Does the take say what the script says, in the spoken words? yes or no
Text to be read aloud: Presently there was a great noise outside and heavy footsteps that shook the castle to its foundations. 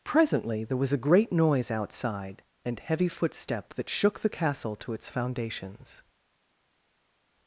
no